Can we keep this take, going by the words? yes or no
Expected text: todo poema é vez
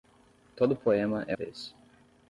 yes